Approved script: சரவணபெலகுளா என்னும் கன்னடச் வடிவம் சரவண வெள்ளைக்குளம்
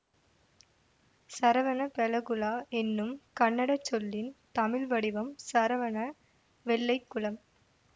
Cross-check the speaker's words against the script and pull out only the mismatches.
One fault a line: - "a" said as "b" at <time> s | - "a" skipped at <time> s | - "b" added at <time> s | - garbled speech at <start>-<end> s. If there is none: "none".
- "சொல்லின் தமிழ்" added at 3.8 s